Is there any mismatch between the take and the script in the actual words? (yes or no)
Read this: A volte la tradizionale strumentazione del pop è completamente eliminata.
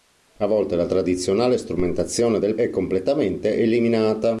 yes